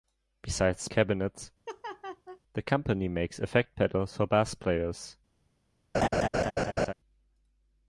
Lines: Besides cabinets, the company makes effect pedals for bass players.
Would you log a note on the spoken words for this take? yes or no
no